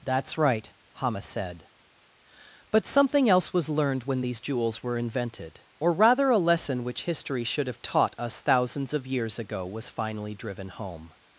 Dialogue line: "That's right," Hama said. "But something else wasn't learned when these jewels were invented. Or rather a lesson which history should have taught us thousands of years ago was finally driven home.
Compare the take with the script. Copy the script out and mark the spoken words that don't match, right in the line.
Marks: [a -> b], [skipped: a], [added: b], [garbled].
"That's right," Hama said. "But something else [wasn't -> was] learned when these jewels were invented. Or rather a lesson which history should have taught us thousands of years ago was finally driven home.